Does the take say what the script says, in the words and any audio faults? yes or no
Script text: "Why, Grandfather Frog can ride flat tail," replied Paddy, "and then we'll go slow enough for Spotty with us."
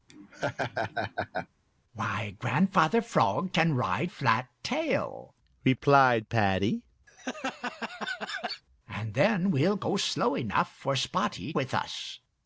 no